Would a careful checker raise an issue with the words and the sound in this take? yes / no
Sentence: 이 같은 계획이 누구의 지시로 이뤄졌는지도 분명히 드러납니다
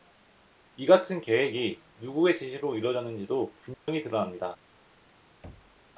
yes